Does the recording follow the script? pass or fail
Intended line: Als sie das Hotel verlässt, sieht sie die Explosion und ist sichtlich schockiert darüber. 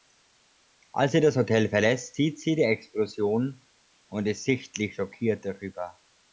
pass